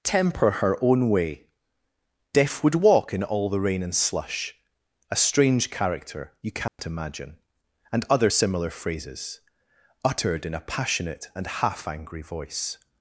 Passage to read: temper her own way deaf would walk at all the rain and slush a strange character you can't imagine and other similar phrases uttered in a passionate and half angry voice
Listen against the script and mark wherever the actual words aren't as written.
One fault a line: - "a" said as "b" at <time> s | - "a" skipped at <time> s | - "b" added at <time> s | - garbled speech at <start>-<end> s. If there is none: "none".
- "at" said as "in" at 3.1 s